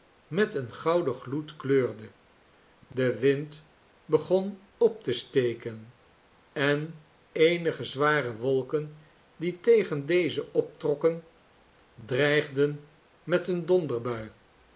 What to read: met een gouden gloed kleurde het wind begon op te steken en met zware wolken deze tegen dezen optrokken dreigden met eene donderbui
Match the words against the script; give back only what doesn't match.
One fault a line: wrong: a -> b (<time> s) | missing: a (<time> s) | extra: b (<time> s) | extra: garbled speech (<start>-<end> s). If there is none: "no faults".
wrong: het -> de (2.9 s)
wrong: met -> eenige (7.3 s)
wrong: deze -> die (9.4 s)